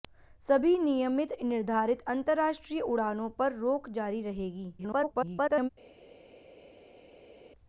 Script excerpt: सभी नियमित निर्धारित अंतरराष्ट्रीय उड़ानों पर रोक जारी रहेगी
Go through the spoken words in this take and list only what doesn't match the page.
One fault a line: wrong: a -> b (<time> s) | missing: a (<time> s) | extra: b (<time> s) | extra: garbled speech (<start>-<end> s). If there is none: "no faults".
extra: garbled speech (4.8-5.7 s)